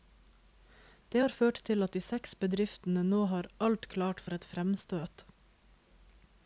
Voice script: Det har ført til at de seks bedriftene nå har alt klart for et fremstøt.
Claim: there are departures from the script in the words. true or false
false